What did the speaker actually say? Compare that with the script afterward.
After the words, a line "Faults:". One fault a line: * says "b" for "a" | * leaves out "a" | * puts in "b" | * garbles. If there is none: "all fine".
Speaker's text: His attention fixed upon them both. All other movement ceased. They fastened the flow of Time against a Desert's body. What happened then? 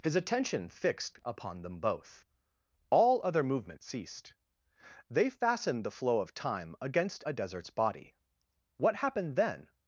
His attention fixed upon them both. All other movement ceased. They fastened the flow of Time against a Desert's body. What happened then?
Faults:
all fine